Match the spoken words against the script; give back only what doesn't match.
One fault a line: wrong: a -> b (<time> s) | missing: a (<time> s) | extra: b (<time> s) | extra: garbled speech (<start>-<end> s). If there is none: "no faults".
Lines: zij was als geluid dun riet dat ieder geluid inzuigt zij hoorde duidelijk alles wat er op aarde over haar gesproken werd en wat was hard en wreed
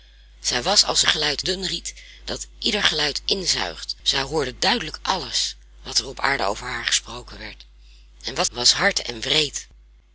no faults